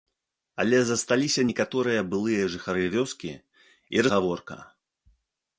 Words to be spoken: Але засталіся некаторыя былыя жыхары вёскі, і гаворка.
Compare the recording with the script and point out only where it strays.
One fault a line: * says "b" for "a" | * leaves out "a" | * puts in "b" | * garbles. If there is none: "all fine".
all fine